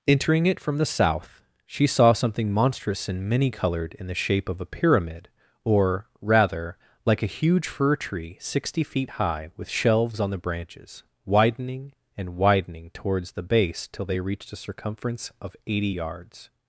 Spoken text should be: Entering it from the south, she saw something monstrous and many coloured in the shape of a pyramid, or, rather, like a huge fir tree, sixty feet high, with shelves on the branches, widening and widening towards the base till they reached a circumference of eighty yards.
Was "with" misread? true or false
false